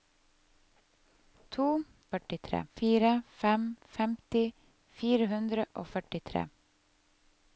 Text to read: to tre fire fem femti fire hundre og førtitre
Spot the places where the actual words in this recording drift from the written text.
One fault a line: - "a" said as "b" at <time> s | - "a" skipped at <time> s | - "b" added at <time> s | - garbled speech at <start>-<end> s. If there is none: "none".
- "tre" said as "førtitre" at 2.1 s